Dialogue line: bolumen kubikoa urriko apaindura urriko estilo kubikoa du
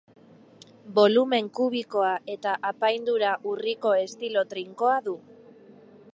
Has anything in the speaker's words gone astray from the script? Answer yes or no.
yes